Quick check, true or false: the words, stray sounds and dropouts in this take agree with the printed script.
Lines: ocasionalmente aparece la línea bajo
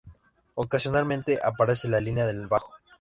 false